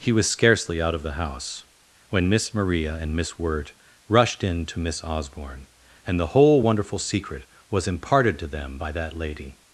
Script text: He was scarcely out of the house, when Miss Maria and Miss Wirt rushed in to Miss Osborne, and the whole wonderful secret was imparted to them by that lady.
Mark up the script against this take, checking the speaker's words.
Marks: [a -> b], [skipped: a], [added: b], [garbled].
He was scarcely out of the house, when Miss Maria and Miss Wirt rushed in to Miss Osborne, and the whole wonderful secret was imparted to them by that lady.